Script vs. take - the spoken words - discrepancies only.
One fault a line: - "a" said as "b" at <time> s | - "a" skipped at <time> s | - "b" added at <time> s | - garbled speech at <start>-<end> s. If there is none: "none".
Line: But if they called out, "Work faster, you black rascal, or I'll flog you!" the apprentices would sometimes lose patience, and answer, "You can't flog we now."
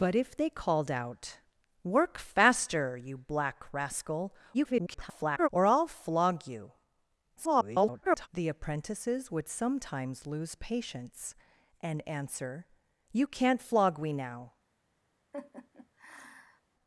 - garbled speech at 4.5-5.5 s
- garbled speech at 7.4-8.3 s